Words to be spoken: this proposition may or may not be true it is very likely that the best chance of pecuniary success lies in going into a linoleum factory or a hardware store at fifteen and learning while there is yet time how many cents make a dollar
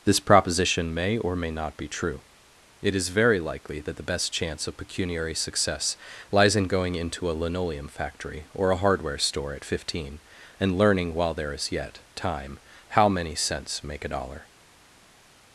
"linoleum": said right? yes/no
yes